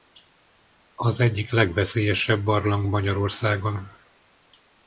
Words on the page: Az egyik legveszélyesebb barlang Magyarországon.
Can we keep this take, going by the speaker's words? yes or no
yes